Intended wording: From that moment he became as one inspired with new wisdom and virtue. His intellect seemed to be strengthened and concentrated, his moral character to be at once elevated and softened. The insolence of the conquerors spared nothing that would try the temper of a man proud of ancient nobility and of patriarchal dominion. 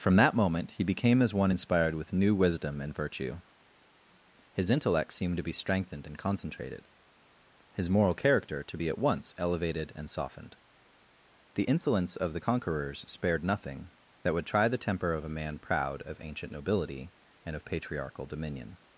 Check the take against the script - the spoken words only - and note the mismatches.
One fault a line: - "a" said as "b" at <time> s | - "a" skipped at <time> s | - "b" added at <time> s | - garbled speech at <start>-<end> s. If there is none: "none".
none